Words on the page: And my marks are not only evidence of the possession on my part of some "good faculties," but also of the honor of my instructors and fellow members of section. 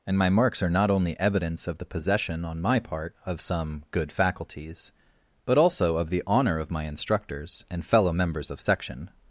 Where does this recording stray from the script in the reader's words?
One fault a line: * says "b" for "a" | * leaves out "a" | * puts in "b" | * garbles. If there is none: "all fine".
all fine